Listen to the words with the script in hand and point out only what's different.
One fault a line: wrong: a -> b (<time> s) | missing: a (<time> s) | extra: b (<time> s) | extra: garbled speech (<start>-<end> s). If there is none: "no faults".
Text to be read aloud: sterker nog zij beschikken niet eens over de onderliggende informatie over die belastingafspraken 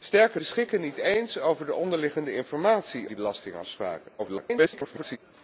missing: nog zij (0.4 s)
missing: over (3.1 s)
extra: garbled speech (4.2-5.2 s)